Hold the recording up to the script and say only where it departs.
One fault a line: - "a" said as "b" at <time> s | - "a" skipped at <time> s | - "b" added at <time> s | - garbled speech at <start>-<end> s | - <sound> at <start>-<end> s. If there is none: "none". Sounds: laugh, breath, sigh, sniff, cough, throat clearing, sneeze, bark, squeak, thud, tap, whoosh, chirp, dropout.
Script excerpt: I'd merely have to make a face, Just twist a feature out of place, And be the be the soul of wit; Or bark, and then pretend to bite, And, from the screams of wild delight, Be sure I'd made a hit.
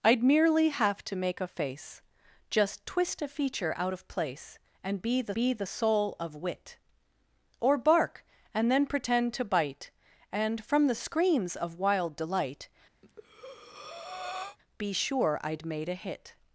- breath at 13.0-14.6 s